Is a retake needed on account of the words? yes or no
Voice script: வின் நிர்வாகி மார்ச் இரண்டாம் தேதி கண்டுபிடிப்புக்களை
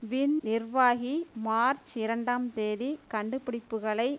no